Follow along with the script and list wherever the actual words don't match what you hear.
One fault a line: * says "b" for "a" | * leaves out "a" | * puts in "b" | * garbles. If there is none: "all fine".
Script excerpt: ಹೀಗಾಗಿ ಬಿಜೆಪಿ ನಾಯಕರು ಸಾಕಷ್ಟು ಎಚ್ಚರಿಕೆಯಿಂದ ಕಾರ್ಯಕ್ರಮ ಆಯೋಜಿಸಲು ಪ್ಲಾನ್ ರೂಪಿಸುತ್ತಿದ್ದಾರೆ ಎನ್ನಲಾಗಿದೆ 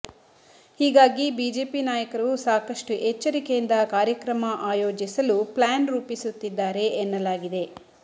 all fine